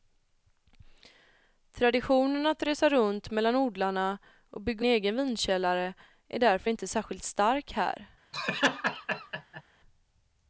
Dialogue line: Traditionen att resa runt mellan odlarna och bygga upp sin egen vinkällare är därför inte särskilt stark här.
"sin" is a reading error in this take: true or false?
true